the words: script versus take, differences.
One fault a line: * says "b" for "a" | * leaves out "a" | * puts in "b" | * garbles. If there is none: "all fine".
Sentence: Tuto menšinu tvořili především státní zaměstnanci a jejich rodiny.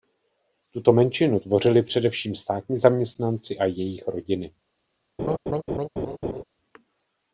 all fine